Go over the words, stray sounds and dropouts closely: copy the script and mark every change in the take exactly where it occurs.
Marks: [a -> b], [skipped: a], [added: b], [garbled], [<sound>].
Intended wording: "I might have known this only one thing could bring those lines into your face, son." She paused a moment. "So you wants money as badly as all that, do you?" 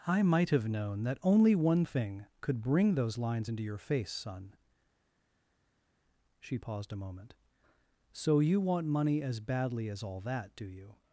"I might have known [this -> that] only one thing could bring those lines into your face, son." She paused a moment. "So you [wants -> want] money as badly as all that, do you?"